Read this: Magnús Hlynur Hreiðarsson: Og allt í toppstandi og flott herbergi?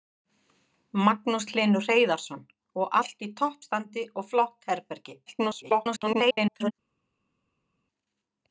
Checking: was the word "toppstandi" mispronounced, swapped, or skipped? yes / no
no